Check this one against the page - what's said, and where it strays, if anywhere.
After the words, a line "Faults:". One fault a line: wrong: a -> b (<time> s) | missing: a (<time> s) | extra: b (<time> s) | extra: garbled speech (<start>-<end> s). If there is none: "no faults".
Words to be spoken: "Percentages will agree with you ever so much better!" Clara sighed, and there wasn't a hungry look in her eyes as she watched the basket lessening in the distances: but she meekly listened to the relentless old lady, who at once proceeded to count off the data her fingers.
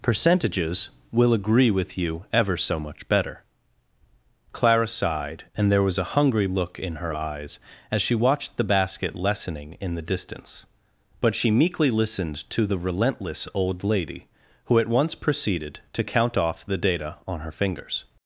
"Percentages will agree with you ever so much better!" Clara sighed, and there was a hungry look in her eyes as she watched the basket lessening in the distance: but she meekly listened to the relentless old lady, who at once proceeded to count off the data on her fingers.
Faults:
wrong: wasn't -> was (5.8 s)
wrong: distances -> distance (10.0 s)
extra: on (17.3 s)